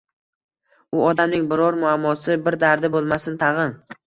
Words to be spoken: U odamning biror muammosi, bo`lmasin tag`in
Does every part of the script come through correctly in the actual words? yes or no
no